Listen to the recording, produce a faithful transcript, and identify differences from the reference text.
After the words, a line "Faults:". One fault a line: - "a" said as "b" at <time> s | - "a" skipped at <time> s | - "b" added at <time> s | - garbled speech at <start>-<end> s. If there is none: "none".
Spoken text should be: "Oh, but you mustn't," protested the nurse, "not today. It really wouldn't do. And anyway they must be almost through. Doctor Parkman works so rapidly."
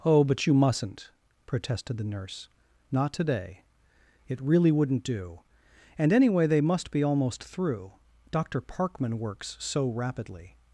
"Oh, but you mustn't," protested the nurse, "not today. It really wouldn't do. And anyway they must be almost through. Doctor Parkman works so rapidly."
Faults:
none